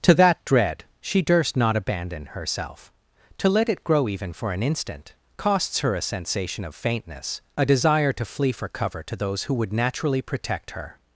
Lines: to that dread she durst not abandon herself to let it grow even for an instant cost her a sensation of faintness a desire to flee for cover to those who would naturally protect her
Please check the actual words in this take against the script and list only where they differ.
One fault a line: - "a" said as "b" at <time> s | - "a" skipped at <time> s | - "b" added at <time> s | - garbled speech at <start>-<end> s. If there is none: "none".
- "cost" said as "costs" at 5.4 s